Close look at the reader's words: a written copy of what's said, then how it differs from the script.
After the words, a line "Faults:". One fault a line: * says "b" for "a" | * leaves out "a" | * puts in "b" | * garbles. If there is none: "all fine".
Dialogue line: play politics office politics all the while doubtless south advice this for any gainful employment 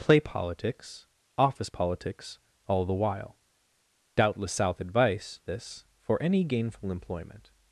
play politics office politics all the while doubtless south advice this for any gainful employment
Faults:
all fine